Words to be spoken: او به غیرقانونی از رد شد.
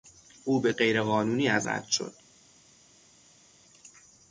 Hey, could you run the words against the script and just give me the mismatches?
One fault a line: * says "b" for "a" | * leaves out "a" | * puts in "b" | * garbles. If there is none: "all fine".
all fine